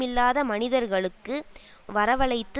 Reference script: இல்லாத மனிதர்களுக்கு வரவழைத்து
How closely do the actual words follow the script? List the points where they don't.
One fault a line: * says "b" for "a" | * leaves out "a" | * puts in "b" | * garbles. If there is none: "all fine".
all fine